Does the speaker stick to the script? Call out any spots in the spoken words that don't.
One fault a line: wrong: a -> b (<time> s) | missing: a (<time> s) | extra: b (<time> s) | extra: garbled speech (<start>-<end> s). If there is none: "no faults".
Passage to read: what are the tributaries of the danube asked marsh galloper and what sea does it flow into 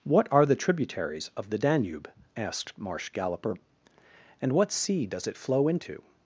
no faults